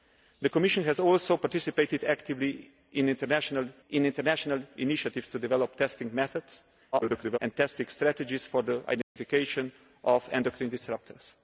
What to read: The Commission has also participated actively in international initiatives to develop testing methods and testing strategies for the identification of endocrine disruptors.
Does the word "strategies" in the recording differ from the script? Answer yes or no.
no